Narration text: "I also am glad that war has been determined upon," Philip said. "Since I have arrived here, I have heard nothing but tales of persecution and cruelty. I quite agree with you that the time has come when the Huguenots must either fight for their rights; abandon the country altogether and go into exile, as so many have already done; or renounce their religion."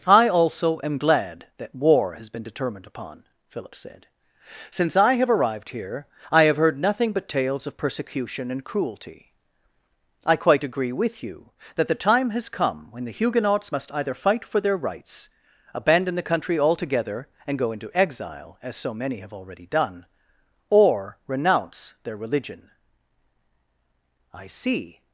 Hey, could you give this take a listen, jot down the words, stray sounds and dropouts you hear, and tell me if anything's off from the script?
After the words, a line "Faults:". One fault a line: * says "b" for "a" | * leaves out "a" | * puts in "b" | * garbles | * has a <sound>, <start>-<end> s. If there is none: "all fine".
"I also am glad that war has been determined upon," Philip said. "Since I have arrived here, I have heard nothing but tales of persecution and cruelty. I quite agree with you that the time has come when the Huguenots must either fight for their rights; abandon the country altogether and go into exile, as so many have already done; or renounce their religion." "I see
Faults:
* puts in "I see"